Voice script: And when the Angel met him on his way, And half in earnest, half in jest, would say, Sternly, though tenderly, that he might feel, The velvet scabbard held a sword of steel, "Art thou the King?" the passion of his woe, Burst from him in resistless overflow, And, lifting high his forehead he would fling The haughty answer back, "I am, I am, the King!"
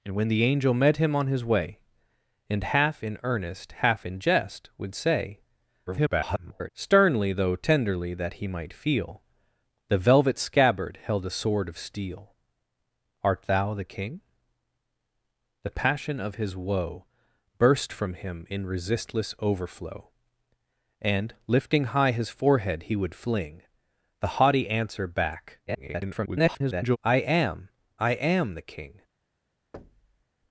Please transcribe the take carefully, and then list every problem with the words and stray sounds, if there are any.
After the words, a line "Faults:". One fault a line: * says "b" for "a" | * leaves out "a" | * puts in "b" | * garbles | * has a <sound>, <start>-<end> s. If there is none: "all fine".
And when the Angel met him on his way, And half in earnest, half in jest, would say, [garbled] Sternly, though tenderly, that he might feel, The velvet scabbard held a sword of steel, "Art thou the King?" the passion of his woe, Burst from him in resistless overflow, And, lifting high his forehead he would fling The haughty answer back, [garbled] "I am, I am, the King!"
Faults:
* garbles
* garbles
* has a thud, 29.7-30.2 s